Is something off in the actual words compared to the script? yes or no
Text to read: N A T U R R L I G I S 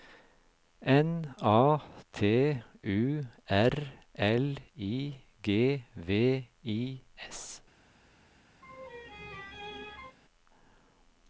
yes